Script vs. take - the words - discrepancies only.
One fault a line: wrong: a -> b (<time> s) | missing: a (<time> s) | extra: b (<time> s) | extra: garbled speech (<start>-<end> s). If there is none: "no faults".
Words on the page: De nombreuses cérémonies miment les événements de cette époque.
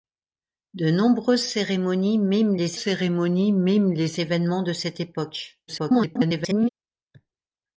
extra: cérémonies miment les (2.7 s)
extra: garbled speech (5.7-6.7 s)